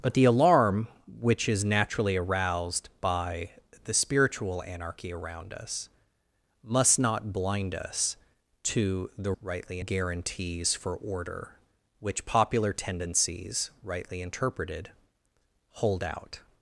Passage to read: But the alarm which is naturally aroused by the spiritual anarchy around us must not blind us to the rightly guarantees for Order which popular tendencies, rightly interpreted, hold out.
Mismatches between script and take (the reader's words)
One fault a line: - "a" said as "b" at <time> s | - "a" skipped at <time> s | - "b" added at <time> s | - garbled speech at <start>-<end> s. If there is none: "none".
none